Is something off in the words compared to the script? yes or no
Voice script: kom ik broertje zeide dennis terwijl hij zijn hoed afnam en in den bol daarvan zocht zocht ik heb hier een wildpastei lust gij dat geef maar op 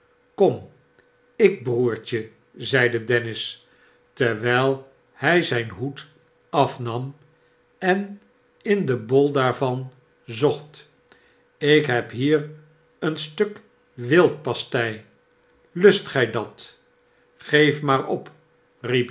yes